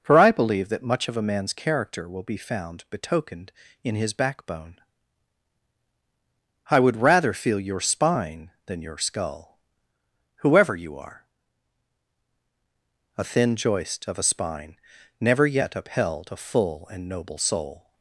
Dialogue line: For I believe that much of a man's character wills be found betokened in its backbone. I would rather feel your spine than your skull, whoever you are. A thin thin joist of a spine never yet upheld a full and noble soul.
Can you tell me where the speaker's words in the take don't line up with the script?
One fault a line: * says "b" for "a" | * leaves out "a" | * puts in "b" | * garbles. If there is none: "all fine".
* says "will" for "wills"
* says "his" for "its"
* leaves out "thin"